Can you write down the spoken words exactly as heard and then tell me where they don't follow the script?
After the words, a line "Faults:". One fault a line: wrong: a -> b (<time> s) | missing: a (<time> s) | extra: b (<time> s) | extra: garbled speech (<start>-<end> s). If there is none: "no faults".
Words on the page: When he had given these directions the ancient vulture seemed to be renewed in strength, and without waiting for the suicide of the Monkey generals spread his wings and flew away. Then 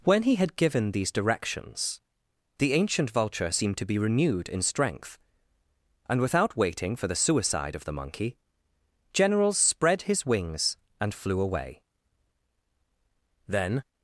When he had given these directions the ancient vulture seemed to be renewed in strength, and without waiting for the suicide of the Monkey generals spread his wings and flew away. Then
Faults:
no faults